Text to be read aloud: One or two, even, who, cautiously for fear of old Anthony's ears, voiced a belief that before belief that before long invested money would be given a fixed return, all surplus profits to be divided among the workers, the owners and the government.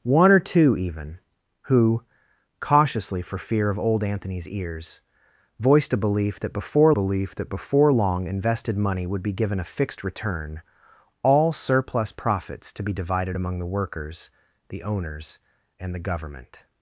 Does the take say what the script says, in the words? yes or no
yes